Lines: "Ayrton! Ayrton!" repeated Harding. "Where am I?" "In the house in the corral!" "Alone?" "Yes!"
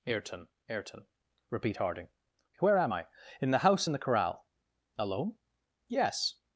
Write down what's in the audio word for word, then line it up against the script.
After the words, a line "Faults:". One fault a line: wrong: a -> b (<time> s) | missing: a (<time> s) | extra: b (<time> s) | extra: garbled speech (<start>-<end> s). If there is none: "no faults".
"Ayrton! Ayrton!" repeat Harding. "Where am I?" "In the house in the corral!" "Alone?" "Yes!"
Faults:
wrong: repeated -> repeat (1.5 s)